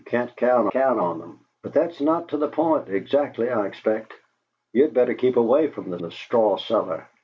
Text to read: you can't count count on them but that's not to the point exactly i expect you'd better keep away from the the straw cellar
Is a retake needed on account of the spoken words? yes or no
no